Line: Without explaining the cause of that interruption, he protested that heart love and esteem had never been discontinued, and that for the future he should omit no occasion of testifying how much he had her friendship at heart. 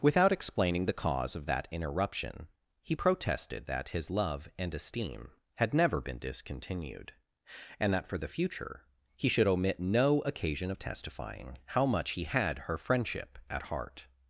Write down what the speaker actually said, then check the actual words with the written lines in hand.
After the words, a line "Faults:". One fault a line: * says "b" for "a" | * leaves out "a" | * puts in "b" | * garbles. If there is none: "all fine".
Without explaining the cause of that interruption, he protested that his love and esteem had never been discontinued, and that for the future he should omit no occasion of testifying how much he had her friendship at heart.
Faults:
* says "his" for "heart"